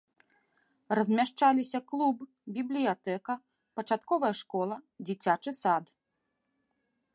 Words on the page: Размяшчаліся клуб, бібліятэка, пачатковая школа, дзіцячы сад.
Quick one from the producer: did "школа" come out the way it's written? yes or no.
yes